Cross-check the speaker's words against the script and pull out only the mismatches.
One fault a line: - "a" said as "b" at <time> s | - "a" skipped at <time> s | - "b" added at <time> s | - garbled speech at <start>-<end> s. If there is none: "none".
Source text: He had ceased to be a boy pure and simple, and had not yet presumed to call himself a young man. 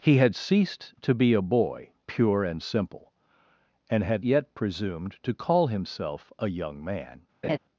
- "not" skipped at 4.3 s